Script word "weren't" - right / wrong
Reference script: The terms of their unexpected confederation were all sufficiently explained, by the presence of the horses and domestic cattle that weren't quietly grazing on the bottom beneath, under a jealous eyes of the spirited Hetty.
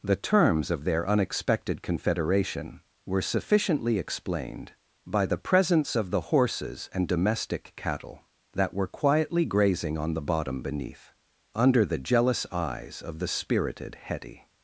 wrong